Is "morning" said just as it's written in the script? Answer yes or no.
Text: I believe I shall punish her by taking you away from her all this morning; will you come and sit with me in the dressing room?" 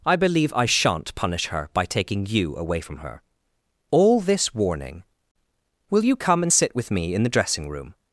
no